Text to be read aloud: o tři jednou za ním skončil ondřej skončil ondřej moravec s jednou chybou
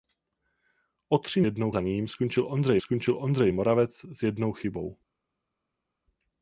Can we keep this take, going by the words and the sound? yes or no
yes